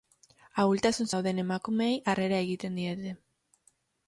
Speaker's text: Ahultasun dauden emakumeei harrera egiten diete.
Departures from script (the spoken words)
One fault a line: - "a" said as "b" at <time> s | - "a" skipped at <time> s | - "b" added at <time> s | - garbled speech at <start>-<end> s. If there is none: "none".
none